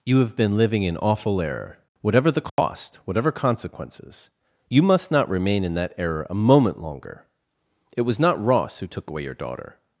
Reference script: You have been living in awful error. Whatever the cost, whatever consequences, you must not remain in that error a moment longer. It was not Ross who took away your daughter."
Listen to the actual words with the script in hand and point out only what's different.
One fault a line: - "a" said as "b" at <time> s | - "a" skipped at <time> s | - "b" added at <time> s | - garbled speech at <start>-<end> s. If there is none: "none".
none